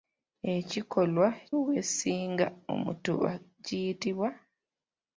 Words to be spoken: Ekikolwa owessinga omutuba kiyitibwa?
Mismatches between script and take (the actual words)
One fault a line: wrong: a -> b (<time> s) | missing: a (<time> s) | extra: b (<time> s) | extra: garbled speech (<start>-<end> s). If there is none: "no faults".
no faults